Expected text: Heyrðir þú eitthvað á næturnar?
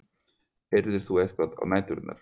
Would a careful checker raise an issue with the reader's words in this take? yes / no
no